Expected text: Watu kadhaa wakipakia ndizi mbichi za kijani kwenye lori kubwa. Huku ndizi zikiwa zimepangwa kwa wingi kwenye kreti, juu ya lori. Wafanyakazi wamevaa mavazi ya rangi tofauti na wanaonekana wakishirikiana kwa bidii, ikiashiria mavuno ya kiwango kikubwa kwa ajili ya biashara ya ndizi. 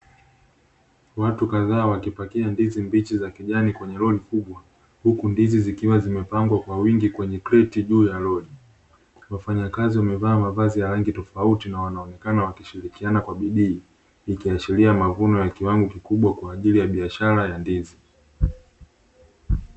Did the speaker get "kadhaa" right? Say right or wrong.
right